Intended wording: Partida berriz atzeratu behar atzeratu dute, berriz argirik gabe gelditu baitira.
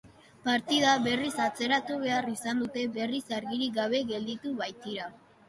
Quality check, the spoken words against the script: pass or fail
fail